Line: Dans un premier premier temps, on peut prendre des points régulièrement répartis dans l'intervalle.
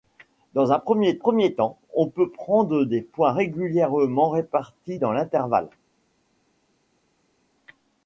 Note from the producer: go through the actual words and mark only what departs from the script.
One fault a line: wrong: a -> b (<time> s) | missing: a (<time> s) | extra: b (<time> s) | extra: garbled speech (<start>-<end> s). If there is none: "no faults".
no faults